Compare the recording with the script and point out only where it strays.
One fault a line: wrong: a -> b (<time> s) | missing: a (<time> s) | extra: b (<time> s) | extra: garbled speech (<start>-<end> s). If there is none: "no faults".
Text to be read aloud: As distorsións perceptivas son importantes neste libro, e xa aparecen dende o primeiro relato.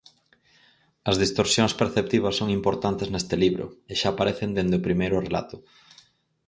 no faults